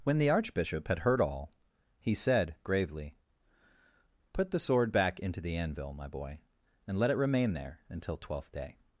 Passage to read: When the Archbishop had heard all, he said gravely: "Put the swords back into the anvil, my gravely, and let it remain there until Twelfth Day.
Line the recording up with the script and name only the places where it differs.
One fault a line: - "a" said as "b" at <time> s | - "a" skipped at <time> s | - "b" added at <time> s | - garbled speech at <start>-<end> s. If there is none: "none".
- "swords" said as "sword" at 4.6 s
- "gravely" said as "boy" at 6.1 s